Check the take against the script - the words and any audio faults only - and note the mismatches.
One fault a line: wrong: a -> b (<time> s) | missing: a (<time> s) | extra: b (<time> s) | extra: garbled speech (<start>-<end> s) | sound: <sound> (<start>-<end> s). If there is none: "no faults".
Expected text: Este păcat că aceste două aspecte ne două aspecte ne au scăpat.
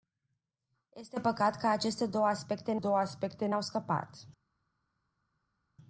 no faults